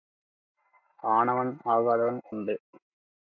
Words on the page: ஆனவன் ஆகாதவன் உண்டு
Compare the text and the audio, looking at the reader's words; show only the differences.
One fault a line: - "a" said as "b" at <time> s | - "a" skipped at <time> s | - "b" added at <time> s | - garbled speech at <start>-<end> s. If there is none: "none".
none